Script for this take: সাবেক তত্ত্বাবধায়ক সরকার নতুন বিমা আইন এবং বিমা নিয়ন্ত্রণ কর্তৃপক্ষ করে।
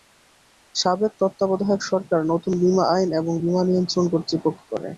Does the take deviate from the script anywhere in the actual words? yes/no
no